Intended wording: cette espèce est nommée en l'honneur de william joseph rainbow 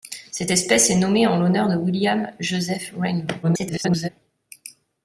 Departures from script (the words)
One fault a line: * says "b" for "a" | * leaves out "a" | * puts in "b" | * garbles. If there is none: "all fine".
* garbles